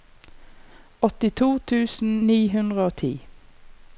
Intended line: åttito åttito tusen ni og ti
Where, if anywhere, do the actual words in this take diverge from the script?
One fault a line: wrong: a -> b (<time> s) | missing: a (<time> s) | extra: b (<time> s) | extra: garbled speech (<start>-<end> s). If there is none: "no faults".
missing: åttito (1.5 s)
extra: hundre (2.6 s)